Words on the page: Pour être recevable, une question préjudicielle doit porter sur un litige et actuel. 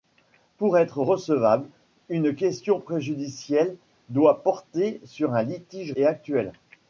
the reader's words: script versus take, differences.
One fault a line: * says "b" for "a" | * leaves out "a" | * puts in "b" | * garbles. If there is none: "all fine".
all fine